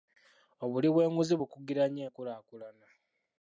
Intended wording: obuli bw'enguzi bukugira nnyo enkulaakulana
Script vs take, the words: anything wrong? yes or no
no